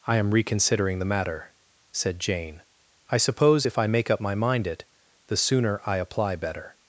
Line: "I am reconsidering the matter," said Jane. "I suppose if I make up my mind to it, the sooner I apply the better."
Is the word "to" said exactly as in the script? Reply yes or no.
no